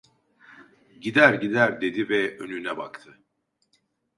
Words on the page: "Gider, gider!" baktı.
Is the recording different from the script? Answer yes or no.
yes